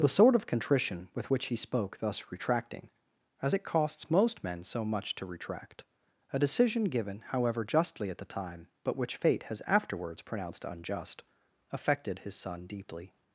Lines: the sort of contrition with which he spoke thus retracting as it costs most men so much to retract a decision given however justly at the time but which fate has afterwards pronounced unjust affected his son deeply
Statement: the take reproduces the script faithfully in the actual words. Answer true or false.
true